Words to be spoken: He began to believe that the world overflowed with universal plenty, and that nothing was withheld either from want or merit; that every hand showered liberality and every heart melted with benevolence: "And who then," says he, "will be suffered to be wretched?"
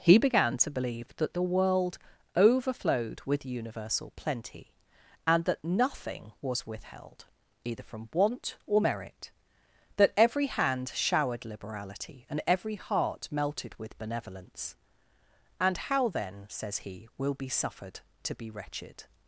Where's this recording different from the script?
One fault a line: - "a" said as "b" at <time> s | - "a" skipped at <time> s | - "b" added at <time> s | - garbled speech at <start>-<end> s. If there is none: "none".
- "who" said as "how" at 15.8 s